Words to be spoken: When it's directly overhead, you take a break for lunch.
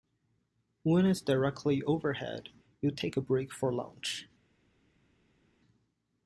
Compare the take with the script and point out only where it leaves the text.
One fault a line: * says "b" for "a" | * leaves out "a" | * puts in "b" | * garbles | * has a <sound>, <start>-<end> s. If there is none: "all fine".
all fine